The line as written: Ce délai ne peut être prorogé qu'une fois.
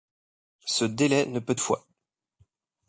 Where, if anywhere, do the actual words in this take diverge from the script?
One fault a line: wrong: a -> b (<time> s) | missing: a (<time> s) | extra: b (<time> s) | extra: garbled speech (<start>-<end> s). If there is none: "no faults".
missing: être prorogé qu'une (1.6 s)